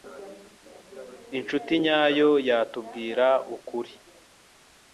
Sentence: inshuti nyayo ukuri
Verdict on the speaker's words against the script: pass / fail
fail